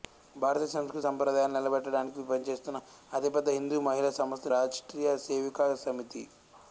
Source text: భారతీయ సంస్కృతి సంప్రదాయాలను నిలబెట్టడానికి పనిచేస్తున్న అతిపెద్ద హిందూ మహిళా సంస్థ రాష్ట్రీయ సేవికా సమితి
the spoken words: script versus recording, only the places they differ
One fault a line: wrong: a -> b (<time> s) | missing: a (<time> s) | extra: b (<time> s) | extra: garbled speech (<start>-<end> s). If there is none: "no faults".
no faults